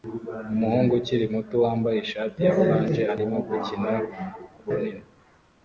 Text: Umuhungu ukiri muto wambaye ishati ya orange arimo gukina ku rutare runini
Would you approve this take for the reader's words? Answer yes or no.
no